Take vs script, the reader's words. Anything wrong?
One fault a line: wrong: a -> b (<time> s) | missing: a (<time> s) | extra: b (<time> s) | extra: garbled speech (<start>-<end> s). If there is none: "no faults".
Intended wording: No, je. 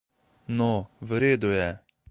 extra: v redu (1.0 s)